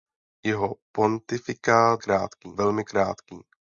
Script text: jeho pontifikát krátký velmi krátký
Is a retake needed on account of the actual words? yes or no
no